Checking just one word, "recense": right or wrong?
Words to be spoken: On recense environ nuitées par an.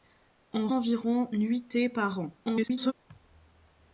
wrong